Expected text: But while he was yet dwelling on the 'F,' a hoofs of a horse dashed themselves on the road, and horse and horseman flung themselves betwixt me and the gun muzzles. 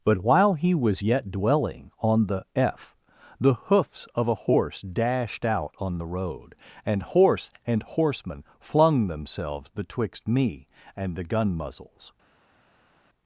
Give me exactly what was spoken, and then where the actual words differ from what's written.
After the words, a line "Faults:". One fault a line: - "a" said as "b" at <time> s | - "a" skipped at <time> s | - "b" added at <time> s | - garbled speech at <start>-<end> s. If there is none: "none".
But while he was yet dwelling on the 'F,' the hoofs of a horse dashed out on the road, and horse and horseman flung themselves betwixt me and the gun muzzles.
Faults:
- "a" said as "the" at 3.4 s
- "themselves" said as "out" at 5.4 s